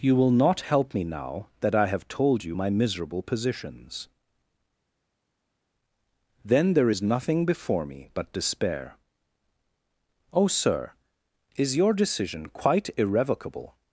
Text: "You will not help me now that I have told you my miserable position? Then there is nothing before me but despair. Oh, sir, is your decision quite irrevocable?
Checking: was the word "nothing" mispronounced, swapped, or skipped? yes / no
no